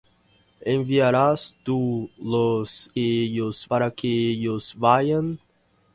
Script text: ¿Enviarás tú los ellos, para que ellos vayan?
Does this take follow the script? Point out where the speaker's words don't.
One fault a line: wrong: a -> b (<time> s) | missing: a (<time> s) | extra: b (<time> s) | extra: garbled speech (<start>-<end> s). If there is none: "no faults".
no faults